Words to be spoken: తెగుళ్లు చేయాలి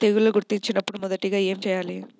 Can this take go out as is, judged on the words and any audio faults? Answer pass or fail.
fail